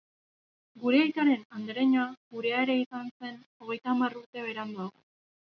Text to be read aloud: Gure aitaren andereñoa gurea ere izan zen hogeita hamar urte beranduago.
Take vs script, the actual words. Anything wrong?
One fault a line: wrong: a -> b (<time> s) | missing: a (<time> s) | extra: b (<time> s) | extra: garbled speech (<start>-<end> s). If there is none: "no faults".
no faults